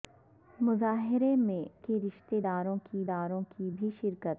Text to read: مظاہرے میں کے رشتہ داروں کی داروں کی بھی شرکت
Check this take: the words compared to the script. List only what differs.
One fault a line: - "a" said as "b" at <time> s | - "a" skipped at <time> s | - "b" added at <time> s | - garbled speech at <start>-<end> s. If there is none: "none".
none